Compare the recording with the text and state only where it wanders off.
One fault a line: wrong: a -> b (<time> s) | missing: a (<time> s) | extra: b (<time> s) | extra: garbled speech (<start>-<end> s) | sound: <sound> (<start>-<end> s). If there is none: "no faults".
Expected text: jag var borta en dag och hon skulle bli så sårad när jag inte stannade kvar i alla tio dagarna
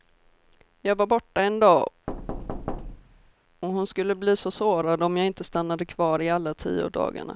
sound: thud (2.1-3.3 s)
wrong: när -> om (5.0 s)